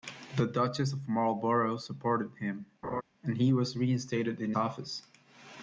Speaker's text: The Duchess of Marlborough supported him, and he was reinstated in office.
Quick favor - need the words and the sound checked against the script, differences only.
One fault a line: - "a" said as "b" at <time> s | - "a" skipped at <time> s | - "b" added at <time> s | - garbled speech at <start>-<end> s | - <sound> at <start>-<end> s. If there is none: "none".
- laugh at 2.8-3.0 s